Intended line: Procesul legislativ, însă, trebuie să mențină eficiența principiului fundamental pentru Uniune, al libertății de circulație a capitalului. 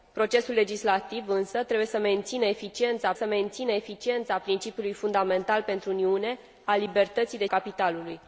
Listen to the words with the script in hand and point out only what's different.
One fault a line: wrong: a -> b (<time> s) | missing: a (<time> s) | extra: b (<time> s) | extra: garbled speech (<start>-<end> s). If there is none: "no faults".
extra: să mențină eficiența (3.1 s)
missing: circulație a (7.5 s)